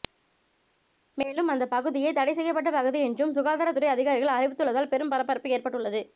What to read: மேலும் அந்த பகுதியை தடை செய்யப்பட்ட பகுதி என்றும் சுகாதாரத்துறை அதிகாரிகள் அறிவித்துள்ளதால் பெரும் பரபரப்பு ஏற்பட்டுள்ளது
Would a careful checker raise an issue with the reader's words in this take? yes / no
no